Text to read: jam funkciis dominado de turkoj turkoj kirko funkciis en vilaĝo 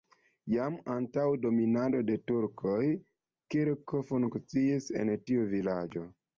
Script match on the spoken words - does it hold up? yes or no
no